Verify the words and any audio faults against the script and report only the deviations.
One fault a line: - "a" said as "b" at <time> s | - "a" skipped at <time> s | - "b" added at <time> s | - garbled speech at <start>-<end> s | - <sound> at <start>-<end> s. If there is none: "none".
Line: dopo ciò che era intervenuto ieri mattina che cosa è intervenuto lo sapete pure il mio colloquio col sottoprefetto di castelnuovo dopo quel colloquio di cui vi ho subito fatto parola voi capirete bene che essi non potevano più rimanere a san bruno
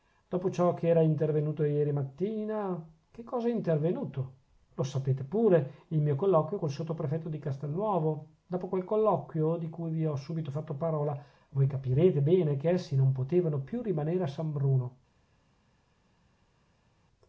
none